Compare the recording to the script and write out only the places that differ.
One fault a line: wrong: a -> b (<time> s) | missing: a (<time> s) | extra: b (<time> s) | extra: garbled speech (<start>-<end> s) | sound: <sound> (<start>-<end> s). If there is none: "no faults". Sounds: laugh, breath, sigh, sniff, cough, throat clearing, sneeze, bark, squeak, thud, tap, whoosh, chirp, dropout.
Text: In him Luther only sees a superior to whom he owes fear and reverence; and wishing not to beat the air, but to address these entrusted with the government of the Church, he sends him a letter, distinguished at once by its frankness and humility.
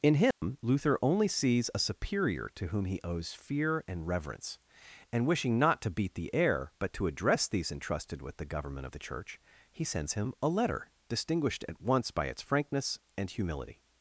sound: dropout (0.3-0.4 s)